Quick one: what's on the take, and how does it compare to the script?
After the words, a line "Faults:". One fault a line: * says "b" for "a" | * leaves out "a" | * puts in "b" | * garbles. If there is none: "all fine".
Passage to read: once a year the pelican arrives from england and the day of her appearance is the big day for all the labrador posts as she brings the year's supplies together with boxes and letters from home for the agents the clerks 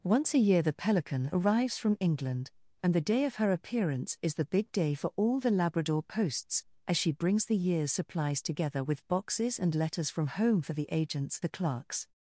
once a year the pelican arrives from england and the day of her appearance is the big day for all the labrador posts as she brings the year's supplies together with boxes and letters from home for the agents the clerks
Faults:
all fine